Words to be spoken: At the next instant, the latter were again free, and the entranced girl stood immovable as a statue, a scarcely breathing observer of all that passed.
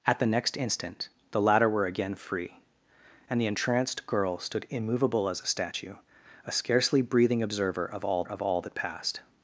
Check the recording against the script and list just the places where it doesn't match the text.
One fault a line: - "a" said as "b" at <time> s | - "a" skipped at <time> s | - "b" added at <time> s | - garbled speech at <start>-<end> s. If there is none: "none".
- "of all" added at 8.2 s